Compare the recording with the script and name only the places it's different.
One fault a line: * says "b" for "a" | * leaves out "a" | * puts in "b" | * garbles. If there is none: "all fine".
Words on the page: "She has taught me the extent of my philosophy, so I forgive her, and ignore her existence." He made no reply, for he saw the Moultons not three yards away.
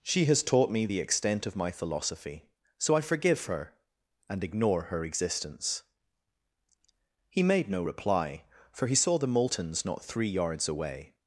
all fine